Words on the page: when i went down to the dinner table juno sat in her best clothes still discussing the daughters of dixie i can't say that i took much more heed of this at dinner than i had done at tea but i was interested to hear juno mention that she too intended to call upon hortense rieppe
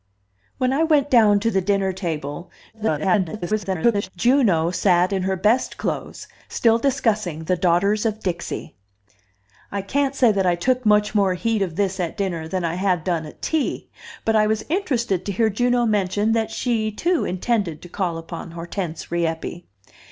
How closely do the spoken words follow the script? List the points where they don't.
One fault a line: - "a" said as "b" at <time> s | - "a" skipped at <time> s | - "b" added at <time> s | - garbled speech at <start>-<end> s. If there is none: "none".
- garbled speech at 2.7-4.1 s